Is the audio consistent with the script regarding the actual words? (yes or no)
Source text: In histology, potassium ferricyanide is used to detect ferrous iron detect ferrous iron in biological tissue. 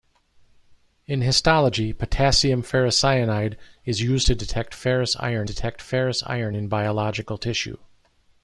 yes